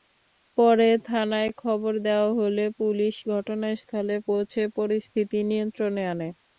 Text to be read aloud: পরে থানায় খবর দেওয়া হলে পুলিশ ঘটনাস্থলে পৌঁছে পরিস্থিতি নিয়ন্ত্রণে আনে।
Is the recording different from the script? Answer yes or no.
no